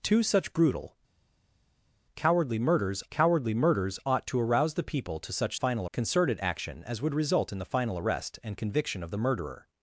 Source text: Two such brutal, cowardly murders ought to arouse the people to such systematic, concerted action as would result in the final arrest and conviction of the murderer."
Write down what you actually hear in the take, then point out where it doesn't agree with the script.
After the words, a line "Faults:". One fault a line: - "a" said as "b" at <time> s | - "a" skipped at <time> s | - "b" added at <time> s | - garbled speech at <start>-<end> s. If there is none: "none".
Two such brutal, cowardly murders cowardly murders ought to arouse the people to such final, concerted action as would result in the final arrest and conviction of the murderer."
Faults:
- "cowardly murders" added at 3.1 s
- "systematic" said as "final" at 5.5 s